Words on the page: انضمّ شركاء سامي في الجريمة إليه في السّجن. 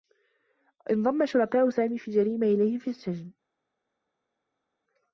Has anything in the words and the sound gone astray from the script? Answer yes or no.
no